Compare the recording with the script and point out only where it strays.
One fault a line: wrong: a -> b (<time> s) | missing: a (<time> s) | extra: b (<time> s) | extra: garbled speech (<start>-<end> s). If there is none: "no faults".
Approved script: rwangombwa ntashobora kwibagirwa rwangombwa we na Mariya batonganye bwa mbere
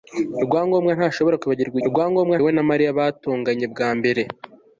no faults